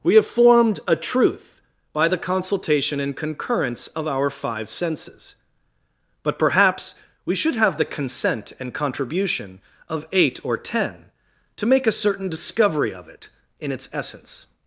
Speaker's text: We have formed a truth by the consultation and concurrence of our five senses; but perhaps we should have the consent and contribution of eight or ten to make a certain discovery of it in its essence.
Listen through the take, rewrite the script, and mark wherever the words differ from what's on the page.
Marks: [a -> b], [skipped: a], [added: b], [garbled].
We have formed a truth by the consultation and concurrence of our five senses; but perhaps we should have the consent and contribution of eight or ten to make a certain discovery of it in its essence.